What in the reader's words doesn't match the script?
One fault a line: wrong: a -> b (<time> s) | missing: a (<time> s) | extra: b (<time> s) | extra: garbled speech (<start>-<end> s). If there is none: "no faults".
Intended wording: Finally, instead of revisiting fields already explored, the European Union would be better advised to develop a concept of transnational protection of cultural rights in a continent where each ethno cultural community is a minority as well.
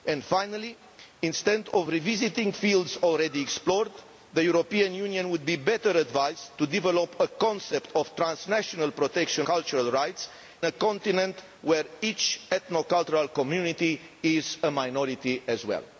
missing: of (9.5 s)
missing: in (10.3 s)